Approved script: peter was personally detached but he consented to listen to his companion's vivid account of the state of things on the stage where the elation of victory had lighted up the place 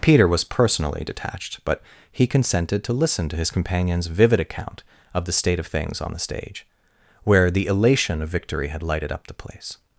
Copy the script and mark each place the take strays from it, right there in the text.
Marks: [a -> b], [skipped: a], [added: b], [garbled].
peter was personally detached but he consented to listen to his companion's vivid account of the state of things on the stage where the elation of victory had lighted up the place